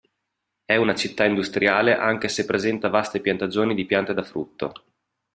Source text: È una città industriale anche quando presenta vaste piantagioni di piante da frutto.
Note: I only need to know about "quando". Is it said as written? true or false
false